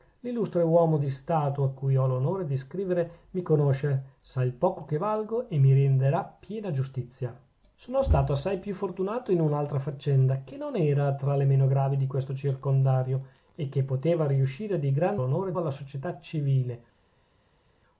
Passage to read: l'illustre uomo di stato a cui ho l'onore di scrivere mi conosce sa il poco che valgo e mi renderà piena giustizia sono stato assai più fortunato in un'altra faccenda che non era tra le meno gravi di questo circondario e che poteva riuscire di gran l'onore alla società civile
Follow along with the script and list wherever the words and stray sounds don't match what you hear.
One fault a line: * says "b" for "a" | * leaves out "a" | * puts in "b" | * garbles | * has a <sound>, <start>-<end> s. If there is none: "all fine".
all fine